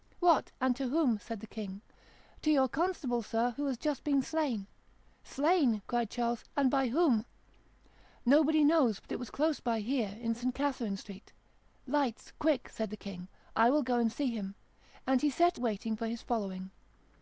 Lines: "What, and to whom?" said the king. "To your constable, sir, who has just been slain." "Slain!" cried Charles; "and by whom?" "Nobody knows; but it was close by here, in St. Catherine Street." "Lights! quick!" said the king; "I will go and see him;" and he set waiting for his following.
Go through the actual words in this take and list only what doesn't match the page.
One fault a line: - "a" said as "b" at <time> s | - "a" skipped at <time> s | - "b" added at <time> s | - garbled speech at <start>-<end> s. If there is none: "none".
none